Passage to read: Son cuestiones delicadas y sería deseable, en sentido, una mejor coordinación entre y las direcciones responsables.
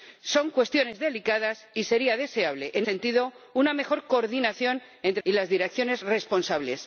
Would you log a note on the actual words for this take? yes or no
no